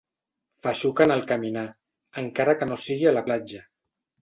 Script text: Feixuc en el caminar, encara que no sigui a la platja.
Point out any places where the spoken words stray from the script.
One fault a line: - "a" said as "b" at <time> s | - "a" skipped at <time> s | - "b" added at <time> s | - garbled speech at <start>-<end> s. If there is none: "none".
none